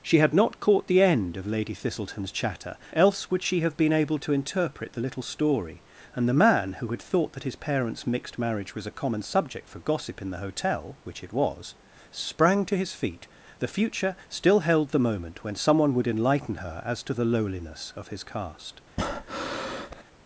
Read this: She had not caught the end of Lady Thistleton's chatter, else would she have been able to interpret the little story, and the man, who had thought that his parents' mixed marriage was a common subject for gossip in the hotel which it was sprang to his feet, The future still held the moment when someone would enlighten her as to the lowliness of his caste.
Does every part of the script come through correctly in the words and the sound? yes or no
no